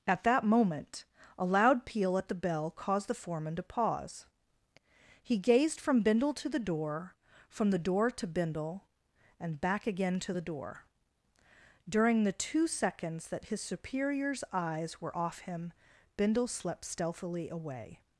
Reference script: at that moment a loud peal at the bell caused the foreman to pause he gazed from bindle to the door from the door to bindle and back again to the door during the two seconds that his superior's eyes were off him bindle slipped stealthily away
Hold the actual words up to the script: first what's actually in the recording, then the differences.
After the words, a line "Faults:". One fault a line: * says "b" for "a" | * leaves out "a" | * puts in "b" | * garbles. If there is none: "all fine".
at that moment a loud peal at the bell caused the foreman to pause he gazed from bindle to the door from the door to bindle and back again to the door during the two seconds that his superior's eyes were off him bindle slept stealthily away
Faults:
* says "slept" for "slipped"